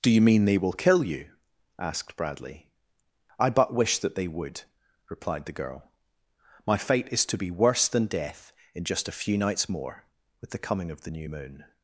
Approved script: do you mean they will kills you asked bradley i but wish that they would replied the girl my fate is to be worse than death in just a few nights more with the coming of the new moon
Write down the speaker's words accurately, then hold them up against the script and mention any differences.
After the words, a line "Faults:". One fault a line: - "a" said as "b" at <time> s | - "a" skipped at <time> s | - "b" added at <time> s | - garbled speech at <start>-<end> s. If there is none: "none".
do you mean they will kill you asked bradley i but wish that they would replied the girl my fate is to be worse than death in just a few nights more with the coming of the new moon
Faults:
- "kills" said as "kill" at 0.7 s